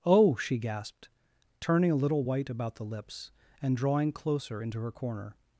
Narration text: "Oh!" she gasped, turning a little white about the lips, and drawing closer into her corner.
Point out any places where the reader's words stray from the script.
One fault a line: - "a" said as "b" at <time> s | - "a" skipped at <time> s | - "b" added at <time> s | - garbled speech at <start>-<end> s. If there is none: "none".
none